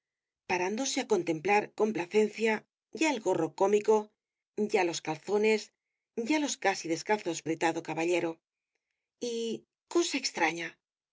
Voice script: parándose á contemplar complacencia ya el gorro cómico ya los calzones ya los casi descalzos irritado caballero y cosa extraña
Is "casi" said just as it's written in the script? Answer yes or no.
yes